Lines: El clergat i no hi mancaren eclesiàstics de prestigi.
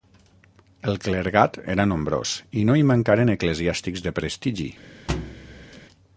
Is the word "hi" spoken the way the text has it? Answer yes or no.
yes